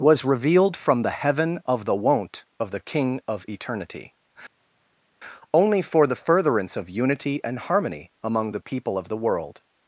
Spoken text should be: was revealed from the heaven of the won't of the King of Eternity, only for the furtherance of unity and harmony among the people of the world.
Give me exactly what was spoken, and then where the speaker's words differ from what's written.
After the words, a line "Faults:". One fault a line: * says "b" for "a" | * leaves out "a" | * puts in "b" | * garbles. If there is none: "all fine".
was revealed from the heaven of the won't of the King of Eternity, only for the furtherance of unity and harmony among the people of the world.
Faults:
all fine